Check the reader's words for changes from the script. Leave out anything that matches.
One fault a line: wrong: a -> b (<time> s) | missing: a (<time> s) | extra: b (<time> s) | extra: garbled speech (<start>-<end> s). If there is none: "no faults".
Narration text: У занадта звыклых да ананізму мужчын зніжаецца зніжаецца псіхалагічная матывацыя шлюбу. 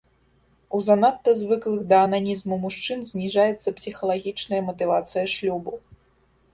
missing: зніжаецца (3.8 s)